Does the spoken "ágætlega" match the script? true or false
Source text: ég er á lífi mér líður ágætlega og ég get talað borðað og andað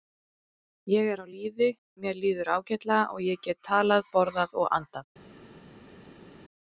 true